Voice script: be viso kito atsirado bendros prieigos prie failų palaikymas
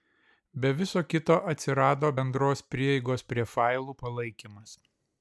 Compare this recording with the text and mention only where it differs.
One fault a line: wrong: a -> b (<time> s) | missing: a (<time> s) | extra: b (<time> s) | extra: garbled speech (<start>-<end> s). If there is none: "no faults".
no faults